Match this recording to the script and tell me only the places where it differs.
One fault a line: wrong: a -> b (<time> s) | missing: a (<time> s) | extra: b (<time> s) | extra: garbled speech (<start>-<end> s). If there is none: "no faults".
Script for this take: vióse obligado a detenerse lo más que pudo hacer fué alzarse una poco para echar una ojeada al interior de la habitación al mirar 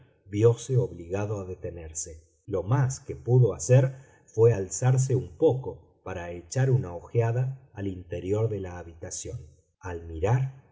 wrong: una -> un (5.2 s)